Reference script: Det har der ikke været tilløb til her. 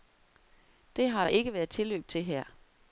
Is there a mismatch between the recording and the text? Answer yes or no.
no